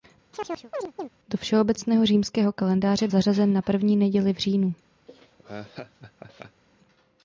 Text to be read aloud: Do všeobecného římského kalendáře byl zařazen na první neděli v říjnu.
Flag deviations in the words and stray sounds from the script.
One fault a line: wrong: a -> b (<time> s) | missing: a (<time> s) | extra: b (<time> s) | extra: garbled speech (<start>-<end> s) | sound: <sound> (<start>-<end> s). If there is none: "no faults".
sound: chirp (0.3-1.1 s)
missing: byl (3.1 s)
sound: laugh (5.1-6.6 s)